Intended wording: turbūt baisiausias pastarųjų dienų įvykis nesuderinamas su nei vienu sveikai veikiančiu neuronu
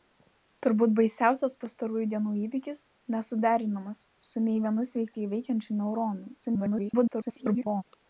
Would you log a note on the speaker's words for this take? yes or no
yes